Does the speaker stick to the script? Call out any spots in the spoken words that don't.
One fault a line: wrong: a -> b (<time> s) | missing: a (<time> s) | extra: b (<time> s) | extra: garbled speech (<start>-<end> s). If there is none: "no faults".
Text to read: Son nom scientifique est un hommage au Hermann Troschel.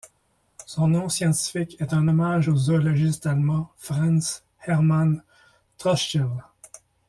extra: zoologiste allemand Franz (2.6 s)